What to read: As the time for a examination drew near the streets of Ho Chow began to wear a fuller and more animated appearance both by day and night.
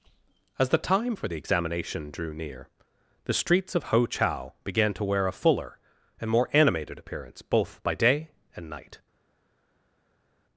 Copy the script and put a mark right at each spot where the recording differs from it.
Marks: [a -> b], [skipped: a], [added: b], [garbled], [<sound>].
As the time for [a -> the] examination drew near the streets of Ho Chow began to wear a fuller and more animated appearance both by day and night.